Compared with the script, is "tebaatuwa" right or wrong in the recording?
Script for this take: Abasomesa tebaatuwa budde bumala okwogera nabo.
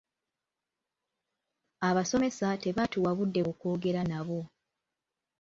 right